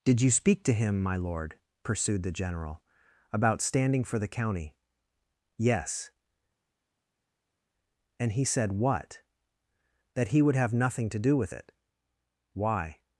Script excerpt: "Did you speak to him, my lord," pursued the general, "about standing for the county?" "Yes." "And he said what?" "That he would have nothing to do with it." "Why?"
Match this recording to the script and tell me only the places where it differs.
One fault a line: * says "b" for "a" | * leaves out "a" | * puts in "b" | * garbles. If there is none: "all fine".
all fine